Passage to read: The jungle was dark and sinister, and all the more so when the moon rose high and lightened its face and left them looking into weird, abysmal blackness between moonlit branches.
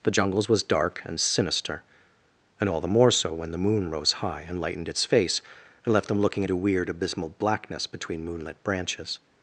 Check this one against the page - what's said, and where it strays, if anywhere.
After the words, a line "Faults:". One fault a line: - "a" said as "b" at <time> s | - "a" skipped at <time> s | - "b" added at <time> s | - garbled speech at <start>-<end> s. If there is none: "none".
The jungles was dark and sinister, and all the more so when the moon rose high and lightened its face and left them looking into weird, abysmal blackness between moonlit branches.
Faults:
- "jungle" said as "jungles" at 0.1 s